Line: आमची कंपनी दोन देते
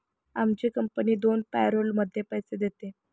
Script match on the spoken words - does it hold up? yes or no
no